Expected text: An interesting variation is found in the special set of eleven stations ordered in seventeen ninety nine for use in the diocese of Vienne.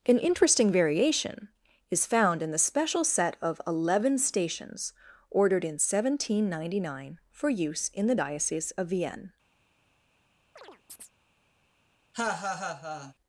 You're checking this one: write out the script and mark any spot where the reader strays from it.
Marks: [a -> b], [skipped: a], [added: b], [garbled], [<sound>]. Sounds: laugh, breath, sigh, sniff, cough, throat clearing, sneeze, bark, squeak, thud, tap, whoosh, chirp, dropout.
An interesting variation is found in the special set of eleven stations ordered in seventeen ninety nine for use in the diocese of Vienne. [chirp] [laugh]